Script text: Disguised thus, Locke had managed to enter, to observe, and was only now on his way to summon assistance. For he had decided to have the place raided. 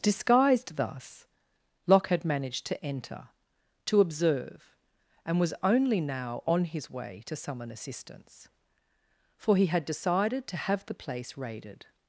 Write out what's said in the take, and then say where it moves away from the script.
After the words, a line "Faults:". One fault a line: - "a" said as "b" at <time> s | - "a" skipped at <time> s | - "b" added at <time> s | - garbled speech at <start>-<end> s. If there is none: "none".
Disguised thus, Locke had managed to enter, to observe, and was only now on his way to summon assistance. For he had decided to have the place raided.
Faults:
none